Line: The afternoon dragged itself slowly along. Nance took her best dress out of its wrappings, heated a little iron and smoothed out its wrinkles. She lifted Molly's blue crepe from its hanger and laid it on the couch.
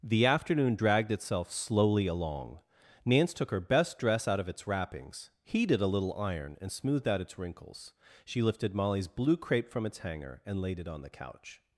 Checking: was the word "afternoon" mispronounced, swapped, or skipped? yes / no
no